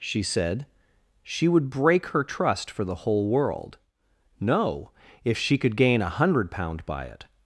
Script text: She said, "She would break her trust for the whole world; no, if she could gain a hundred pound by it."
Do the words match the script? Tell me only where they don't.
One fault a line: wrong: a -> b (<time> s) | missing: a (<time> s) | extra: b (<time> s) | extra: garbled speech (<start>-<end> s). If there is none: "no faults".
no faults